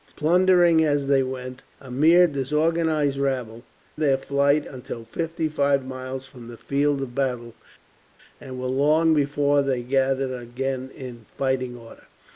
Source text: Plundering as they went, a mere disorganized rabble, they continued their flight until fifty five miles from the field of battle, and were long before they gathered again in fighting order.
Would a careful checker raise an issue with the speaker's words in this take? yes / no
yes